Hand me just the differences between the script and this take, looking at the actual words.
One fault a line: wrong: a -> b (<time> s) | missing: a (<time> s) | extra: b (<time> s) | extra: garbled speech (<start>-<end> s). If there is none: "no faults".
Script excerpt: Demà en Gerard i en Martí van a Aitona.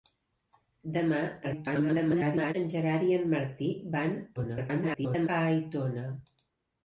extra: garbled speech (1.4-2.5 s)
extra: garbled speech (4.4-5.3 s)